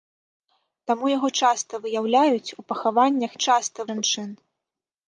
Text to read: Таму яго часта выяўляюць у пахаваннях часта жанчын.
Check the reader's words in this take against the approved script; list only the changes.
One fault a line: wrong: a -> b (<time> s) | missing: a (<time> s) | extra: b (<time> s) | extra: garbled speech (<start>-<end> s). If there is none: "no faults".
no faults